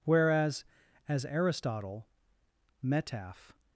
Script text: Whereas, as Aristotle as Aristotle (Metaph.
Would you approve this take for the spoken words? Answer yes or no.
no